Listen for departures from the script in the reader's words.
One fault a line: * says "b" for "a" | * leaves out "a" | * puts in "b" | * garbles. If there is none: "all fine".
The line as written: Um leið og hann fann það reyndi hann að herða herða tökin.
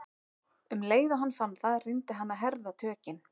* leaves out "herða"